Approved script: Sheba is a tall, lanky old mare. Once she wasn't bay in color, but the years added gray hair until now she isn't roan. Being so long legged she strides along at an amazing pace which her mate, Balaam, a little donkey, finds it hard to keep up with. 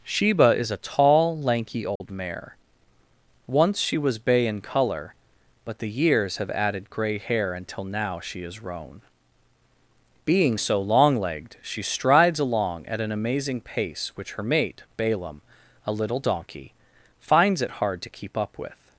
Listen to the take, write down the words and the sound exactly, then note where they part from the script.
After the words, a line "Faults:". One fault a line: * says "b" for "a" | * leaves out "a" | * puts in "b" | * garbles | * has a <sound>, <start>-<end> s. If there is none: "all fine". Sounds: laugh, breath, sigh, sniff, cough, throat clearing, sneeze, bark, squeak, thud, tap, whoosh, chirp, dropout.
Sheba is a tall, lanky old mare. Once she was bay in color, but the years have added gray hair until now she is roan. Being so long legged she strides along at an amazing pace which her mate, Balaam, a little donkey, finds it hard to keep up with.
Faults:
* has a dropout, 2.0-2.0 s
* says "was" for "wasn't"
* puts in "have"
* says "is" for "isn't"